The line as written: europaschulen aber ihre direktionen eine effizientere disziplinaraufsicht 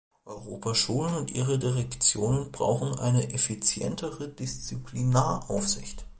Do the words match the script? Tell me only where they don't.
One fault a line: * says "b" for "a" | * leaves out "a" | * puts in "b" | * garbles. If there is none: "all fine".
* says "und" for "aber"
* puts in "brauchen"